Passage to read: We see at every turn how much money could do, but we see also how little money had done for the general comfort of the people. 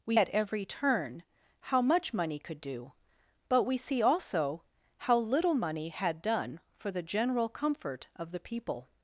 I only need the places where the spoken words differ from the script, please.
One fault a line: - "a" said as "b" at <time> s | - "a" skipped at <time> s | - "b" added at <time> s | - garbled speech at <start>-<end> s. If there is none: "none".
- "see" skipped at 0.2 s